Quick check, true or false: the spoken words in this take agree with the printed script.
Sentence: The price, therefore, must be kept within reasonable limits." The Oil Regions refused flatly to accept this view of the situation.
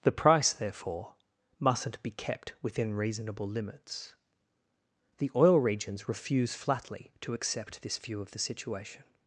false